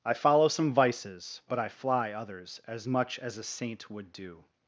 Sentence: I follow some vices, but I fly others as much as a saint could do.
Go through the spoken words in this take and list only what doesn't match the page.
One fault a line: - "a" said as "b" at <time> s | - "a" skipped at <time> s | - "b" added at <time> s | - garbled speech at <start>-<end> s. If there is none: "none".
- "could" said as "would" at 3.9 s